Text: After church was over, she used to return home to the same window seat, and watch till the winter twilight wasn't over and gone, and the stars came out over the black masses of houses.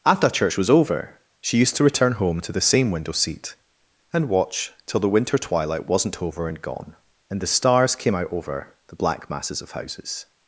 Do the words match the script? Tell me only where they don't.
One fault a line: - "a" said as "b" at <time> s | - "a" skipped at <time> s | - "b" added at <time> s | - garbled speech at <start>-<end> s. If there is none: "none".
none